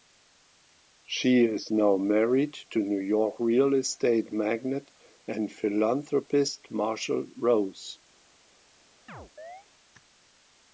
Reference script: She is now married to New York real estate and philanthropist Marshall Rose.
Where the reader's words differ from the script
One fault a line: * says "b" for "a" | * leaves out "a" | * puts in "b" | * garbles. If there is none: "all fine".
* puts in "magnate"